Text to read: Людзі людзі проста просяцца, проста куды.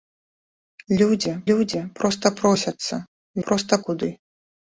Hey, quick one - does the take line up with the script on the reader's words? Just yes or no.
yes